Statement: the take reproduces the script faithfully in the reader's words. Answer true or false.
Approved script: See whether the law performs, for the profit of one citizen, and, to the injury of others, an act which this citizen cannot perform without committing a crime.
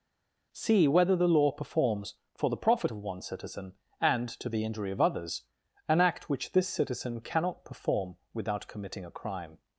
true